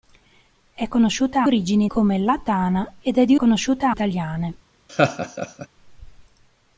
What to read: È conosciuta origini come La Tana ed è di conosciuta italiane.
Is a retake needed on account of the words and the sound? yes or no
yes